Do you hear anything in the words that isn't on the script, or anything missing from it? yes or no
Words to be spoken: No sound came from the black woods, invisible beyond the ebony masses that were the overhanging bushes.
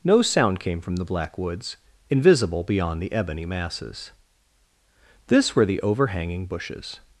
yes